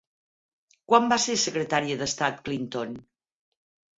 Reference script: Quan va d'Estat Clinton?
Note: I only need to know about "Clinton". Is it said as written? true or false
true